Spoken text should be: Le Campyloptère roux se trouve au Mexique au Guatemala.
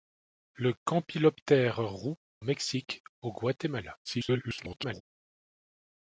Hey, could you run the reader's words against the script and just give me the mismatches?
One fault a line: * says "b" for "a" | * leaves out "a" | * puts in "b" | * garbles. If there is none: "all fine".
* leaves out "se trouve au"
* garbles